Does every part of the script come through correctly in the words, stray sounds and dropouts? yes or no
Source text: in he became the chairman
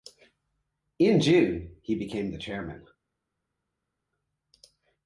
no